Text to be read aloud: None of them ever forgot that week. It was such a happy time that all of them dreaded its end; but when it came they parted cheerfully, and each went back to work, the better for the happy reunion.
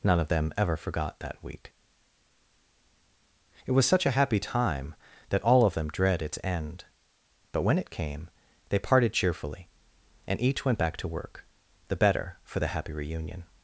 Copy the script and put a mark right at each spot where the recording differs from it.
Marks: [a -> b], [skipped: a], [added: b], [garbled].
None of them ever forgot that week. It was such a happy time that all of them [dreaded -> dread] its end; but when it came they parted cheerfully, and each went back to work, the better for the happy reunion.